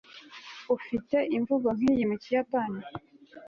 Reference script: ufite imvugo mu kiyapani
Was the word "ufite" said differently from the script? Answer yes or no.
no